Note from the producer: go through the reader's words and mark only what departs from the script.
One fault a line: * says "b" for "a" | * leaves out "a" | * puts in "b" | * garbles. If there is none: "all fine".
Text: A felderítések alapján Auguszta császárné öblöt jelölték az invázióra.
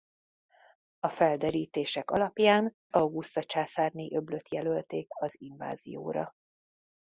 all fine